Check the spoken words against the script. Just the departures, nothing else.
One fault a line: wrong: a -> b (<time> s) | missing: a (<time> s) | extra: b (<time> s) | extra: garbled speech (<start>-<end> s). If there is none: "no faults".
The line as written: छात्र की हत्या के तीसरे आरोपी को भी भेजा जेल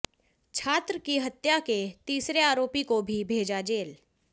no faults